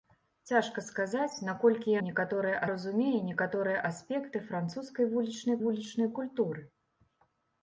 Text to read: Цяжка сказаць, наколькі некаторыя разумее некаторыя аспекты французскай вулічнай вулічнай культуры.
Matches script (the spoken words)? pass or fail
pass